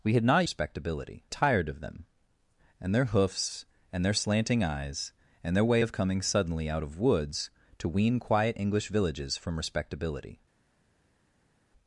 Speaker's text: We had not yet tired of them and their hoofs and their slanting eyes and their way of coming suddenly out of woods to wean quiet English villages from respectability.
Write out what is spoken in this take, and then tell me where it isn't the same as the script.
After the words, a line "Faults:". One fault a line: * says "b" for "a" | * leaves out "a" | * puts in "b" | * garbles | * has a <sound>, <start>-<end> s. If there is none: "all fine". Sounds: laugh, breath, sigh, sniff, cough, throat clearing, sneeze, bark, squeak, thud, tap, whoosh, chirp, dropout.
We had not respectability tired of them and their hoofs and their slanting eyes and their way of coming suddenly out of woods to wean quiet English villages from respectability.
Faults:
* says "respectability" for "yet"